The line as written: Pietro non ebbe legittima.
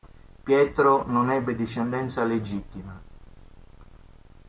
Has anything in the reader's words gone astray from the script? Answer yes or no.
yes